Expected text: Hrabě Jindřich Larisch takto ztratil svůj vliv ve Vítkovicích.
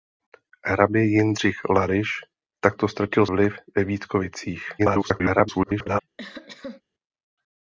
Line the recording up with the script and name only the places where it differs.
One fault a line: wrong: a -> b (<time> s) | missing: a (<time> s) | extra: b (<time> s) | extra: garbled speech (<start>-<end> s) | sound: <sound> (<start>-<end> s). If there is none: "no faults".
missing: svůj (3.3 s)
extra: garbled speech (4.8-6.0 s)
sound: cough (6.2-6.8 s)